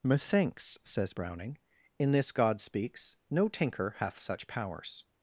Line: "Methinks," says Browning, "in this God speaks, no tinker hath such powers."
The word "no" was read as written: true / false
true